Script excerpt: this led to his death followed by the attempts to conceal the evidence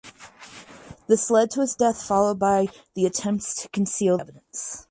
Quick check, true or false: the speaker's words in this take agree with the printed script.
false